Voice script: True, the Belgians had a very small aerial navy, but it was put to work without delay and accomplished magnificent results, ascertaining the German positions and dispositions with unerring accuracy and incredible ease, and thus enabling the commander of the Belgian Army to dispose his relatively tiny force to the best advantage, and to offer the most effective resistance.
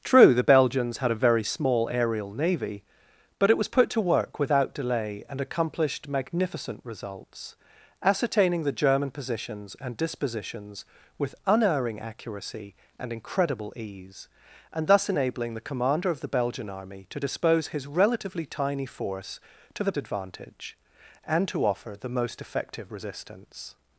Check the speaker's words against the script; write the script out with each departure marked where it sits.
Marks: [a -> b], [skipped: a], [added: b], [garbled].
True, the Belgians had a very small aerial navy, but it was put to work without delay and accomplished magnificent results, ascertaining the German positions and dispositions with unerring accuracy and incredible ease, and thus enabling the commander of the Belgian Army to dispose his relatively tiny force to the [skipped: best] advantage, and to offer the most effective resistance.